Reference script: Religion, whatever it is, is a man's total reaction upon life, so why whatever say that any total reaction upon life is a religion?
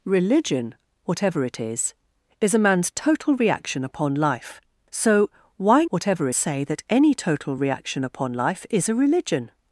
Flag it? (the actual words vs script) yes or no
no